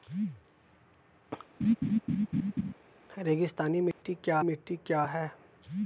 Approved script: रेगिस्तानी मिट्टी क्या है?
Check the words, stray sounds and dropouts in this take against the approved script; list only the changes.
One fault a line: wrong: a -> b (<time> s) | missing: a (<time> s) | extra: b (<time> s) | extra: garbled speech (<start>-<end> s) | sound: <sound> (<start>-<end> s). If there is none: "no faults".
sound: laugh (1.6-2.7 s)
sound: dropout (3.9-4.0 s)
extra: मिट्टी क्या (4.4 s)